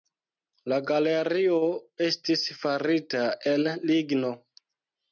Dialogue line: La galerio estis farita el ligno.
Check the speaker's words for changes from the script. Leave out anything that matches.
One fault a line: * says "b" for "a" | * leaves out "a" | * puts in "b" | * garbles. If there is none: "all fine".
all fine